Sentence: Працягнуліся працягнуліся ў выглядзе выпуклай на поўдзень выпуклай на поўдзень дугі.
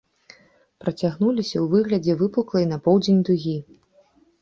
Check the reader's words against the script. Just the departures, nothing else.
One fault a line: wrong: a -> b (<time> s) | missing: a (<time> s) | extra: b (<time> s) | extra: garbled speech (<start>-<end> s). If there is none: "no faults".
missing: працягнуліся (1.5 s)
missing: выпуклай на поўдзень (3.2 s)